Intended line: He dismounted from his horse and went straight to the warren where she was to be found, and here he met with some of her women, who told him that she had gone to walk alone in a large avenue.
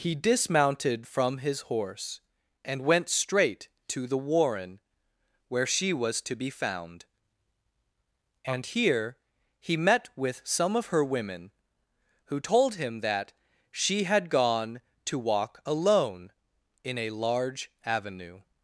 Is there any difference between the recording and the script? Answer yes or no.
no